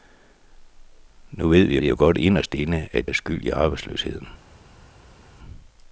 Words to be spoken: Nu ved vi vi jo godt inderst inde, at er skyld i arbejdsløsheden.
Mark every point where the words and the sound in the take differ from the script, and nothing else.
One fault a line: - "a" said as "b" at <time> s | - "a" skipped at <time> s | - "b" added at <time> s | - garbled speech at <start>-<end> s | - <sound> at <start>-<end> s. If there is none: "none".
none